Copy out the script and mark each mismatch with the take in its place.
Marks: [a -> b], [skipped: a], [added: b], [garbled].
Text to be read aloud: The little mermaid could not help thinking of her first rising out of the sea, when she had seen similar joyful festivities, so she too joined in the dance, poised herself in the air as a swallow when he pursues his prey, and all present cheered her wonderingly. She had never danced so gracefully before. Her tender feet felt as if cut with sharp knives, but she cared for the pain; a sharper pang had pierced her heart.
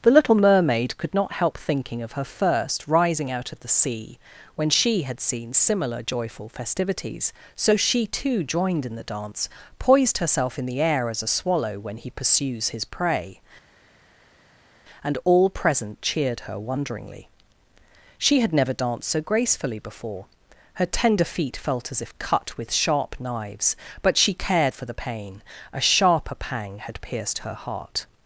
The little mermaid could not help thinking of her first rising out of the sea, when she had seen similar joyful festivities, so she too joined in the dance, poised herself in the air as a swallow when he pursues his prey, and all present cheered her wonderingly. She had never danced so gracefully before. Her tender feet felt as if cut with sharp knives, but she cared for the pain; a sharper pang had pierced her heart.